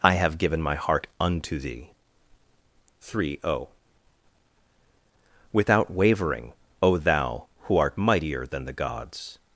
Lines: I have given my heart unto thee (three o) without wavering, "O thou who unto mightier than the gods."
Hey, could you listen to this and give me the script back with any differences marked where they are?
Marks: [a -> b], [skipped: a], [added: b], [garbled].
I have given my heart unto thee (three o) without wavering, "O thou who [unto -> art] mightier than the gods."